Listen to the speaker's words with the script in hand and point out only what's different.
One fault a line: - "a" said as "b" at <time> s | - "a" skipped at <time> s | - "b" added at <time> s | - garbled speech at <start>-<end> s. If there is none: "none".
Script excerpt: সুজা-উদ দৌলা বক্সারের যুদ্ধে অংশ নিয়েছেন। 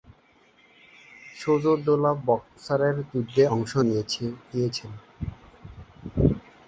none